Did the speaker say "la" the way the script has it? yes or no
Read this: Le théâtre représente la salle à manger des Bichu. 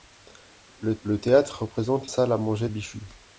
no